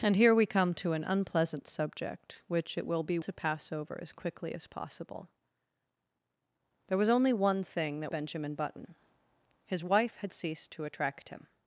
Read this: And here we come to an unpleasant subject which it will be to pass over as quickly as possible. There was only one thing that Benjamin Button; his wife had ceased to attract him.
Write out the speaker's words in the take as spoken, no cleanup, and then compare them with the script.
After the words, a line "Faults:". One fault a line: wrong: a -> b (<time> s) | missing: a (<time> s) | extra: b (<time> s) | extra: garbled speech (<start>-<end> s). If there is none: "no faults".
And here we come to an unpleasant subject which it will be to pass over as quickly as possible. There was only one thing that Benjamin Button; his wife had ceased to attract him.
Faults:
no faults